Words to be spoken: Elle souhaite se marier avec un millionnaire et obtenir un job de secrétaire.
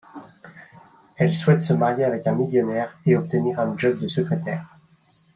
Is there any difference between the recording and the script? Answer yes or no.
no